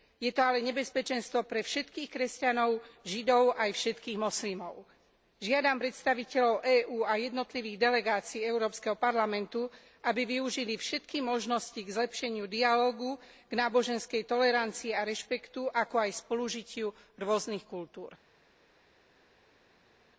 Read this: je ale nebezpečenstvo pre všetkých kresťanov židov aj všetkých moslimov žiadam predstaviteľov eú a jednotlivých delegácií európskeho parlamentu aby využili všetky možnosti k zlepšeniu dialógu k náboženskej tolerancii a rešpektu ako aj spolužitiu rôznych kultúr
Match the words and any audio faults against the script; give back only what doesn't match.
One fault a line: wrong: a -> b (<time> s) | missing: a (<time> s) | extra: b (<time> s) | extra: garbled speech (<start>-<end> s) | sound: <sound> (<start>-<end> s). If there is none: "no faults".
extra: to (0.3 s)